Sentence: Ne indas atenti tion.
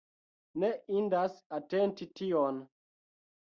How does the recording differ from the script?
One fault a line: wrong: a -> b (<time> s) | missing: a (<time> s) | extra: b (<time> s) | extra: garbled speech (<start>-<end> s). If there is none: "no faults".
no faults